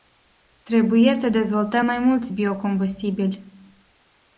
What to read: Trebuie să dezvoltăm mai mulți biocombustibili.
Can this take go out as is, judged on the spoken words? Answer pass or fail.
pass